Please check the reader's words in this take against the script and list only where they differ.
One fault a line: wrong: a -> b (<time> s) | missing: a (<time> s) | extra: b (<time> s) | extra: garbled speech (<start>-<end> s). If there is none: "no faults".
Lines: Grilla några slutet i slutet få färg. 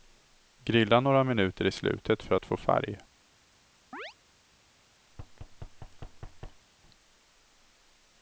wrong: slutet -> minuter (1.2 s)
extra: för att (2.2 s)